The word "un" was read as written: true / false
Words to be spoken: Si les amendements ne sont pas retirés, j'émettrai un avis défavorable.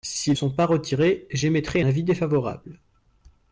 false